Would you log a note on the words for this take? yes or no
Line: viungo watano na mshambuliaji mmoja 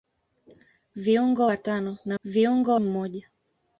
yes